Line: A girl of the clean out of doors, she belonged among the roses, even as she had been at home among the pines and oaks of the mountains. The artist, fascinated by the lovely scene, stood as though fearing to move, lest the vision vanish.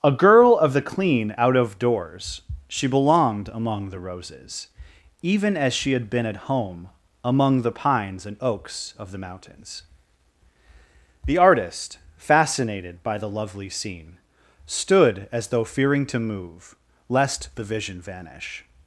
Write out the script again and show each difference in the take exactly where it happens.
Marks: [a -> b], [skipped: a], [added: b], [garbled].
A girl of the clean out of doors, she belonged among the roses, even as she had been at home among the pines and oaks of the mountains. The artist, fascinated by the lovely scene, stood as though fearing to move, lest the vision vanish.